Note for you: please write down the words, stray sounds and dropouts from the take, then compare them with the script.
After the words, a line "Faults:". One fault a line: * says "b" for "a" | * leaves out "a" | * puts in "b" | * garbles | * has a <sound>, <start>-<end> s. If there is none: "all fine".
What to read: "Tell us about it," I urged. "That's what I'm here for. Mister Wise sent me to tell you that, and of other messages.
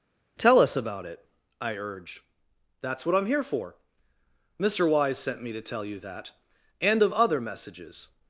"Tell us about it," I urged. "That's what I'm here for. Mister Wise sent me to tell you that, and of other messages.
Faults:
all fine